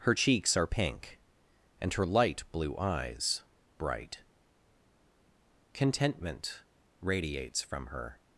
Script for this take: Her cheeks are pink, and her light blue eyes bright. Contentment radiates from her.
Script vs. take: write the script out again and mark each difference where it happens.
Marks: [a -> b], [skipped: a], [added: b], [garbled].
Her cheeks are pink, and her light blue eyes bright. Contentment radiates from her.